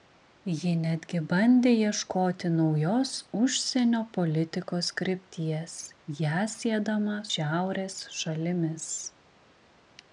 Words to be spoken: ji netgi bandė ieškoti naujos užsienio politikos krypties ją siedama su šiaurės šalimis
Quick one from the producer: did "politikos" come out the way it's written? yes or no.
yes